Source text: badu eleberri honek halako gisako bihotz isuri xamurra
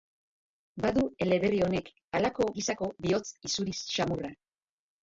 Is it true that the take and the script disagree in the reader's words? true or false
false